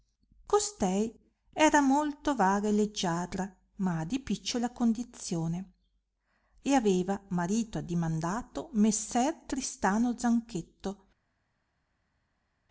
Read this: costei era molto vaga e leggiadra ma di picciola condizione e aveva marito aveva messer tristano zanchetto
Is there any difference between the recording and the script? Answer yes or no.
yes